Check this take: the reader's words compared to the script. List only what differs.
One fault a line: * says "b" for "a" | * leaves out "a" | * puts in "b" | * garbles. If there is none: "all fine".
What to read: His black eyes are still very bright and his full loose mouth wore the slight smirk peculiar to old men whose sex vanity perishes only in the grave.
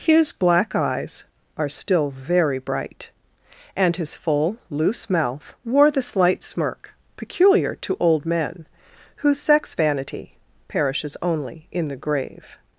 all fine